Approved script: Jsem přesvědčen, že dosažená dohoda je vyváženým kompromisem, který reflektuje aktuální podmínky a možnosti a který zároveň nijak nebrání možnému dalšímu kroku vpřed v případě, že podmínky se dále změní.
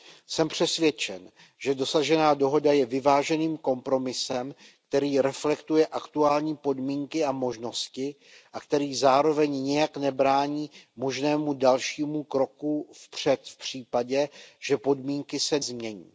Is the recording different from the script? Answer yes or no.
yes